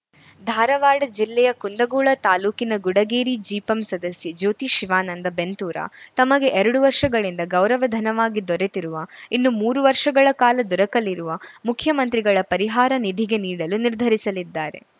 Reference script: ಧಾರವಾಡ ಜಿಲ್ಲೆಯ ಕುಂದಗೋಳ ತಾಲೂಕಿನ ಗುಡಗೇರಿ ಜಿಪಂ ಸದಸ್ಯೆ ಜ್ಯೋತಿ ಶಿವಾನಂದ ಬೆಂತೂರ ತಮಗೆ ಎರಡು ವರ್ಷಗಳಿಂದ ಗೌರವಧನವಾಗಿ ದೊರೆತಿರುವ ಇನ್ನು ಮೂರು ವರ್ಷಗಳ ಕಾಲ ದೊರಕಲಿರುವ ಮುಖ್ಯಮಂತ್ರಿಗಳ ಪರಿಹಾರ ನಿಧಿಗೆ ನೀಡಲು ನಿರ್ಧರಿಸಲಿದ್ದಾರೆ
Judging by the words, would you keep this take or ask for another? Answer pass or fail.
pass